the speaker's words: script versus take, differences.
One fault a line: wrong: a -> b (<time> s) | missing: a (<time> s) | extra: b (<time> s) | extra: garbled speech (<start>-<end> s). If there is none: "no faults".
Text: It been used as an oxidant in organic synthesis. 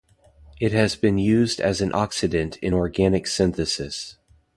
extra: has (0.7 s)